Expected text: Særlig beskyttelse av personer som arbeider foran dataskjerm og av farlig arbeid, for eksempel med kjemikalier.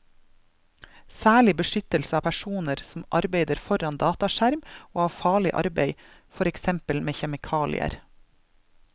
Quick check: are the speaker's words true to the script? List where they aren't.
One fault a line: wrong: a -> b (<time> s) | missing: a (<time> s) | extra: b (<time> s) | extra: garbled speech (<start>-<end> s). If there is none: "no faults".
no faults